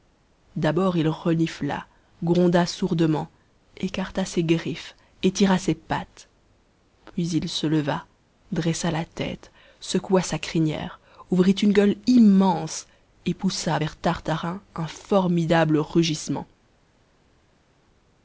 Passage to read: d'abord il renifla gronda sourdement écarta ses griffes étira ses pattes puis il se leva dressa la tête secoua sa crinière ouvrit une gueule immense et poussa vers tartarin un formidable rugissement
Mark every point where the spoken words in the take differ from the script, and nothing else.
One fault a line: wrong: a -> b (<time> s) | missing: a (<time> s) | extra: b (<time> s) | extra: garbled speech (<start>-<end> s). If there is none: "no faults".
no faults